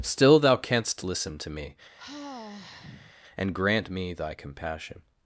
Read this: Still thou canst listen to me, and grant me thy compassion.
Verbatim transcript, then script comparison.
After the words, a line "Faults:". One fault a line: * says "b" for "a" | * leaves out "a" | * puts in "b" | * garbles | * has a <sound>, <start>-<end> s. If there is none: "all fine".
Still thou canst listen to me, and grant me thy compassion.
Faults:
* has a sigh, 2.0-3.1 s